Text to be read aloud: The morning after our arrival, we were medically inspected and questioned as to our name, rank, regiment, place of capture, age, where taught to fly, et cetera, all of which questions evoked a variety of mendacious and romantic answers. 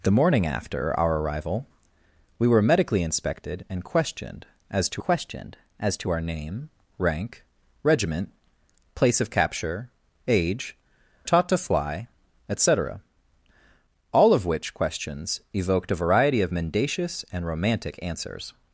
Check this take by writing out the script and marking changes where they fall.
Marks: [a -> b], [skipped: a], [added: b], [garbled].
The morning after our arrival, we were medically inspected and questioned as to [added: questioned as to] our name, rank, regiment, place of capture, age, [skipped: where] taught to fly, et cetera, all of which questions evoked a variety of mendacious and romantic answers.